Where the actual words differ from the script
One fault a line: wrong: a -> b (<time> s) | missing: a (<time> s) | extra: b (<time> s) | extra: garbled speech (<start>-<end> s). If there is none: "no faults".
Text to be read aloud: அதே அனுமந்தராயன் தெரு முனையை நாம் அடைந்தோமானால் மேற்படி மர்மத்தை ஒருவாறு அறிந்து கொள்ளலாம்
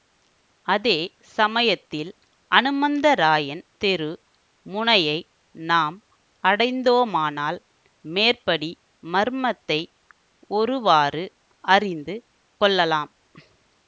extra: சமயத்தில் (1.4 s)